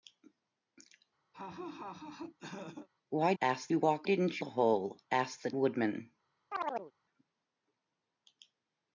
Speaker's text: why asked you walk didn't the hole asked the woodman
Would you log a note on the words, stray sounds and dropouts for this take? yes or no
yes